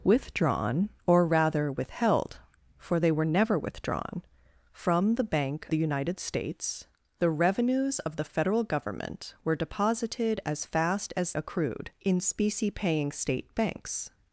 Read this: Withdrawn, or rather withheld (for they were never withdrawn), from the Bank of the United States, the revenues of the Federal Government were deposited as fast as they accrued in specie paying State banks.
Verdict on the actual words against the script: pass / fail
fail